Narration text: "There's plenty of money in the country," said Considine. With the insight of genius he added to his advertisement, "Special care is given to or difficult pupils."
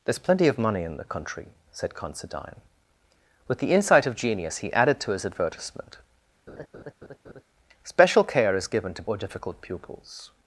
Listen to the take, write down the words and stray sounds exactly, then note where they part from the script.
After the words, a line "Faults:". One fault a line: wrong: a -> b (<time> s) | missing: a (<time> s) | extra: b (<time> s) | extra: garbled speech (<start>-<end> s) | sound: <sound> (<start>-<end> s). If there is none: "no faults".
"There's plenty of money in the country," said Considine. With the insight of genius he added to his advertisement, "Special care is given to or difficult pupils."
Faults:
sound: laugh (6.5-7.4 s)